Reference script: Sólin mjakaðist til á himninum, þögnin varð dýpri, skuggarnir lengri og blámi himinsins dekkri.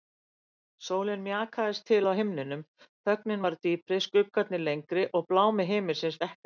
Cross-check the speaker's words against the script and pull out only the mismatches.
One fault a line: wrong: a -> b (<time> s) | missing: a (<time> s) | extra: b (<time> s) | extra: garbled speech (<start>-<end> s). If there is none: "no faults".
no faults